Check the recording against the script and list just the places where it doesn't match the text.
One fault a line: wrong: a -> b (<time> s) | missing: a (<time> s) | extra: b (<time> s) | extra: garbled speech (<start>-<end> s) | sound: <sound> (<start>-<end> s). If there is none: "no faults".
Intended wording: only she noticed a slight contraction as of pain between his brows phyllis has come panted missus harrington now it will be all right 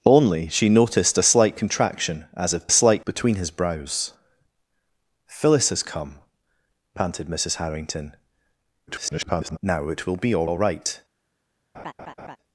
wrong: pain -> slight (2.7 s)
extra: garbled speech (8.9-9.6 s)
extra: all (10.4 s)
sound: laugh (11.7-12.4 s)